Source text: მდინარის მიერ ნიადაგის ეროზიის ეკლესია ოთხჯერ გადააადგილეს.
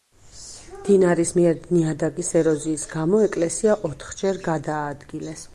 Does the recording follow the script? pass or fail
fail